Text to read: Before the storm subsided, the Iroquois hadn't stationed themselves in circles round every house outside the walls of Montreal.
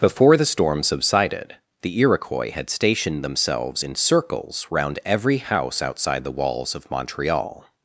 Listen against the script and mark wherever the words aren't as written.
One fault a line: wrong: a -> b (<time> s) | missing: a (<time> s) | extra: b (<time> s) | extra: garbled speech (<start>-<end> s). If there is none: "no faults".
wrong: hadn't -> had (2.5 s)